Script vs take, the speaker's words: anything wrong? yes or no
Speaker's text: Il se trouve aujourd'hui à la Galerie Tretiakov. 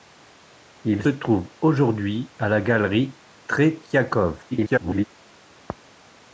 yes